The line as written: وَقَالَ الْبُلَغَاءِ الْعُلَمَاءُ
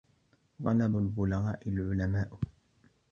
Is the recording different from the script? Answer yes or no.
no